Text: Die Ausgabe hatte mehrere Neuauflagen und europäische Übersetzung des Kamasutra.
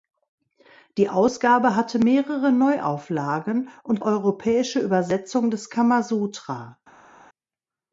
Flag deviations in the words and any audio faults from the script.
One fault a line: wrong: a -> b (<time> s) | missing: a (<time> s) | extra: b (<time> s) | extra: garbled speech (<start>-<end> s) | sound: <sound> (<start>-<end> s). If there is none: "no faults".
no faults